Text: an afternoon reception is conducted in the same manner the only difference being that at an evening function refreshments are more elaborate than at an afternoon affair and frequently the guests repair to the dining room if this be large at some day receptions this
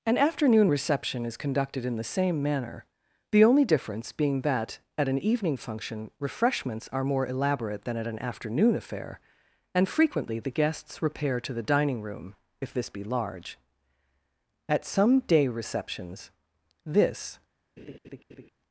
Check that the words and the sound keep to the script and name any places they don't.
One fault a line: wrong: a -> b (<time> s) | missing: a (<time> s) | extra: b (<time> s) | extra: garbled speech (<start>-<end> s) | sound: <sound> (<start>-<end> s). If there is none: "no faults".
sound: laugh (17.8-18.5 s)